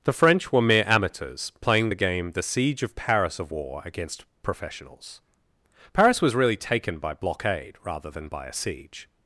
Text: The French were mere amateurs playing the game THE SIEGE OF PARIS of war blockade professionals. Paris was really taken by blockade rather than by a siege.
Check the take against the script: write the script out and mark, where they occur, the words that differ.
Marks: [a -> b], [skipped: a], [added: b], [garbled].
The French were mere amateurs playing the game THE SIEGE OF PARIS of war [blockade -> against] professionals. Paris was really taken by blockade rather than by a siege.